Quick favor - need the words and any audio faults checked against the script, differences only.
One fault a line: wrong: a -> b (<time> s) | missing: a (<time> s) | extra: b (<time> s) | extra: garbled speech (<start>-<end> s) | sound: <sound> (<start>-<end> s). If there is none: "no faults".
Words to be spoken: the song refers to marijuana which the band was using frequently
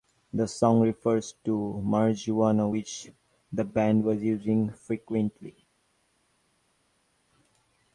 no faults